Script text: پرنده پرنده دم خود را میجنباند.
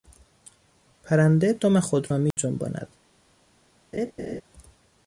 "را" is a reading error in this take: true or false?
false